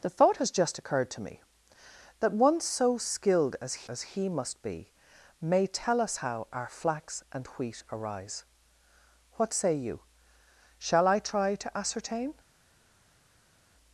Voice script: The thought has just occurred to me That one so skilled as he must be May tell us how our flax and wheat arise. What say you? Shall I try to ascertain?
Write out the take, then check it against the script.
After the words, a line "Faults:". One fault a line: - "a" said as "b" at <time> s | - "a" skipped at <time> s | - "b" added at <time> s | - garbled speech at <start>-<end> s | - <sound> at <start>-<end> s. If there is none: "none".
The thought has just occurred to me That one so skilled as as he must be May tell us how our flax and wheat arise. What say you? Shall I try to ascertain?
Faults:
- "as" added at 3.9 s